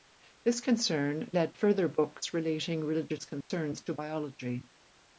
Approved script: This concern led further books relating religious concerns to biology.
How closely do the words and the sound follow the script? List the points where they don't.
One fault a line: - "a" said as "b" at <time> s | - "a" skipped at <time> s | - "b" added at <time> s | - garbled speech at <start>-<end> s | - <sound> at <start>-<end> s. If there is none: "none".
- dropout at 3.4-3.5 s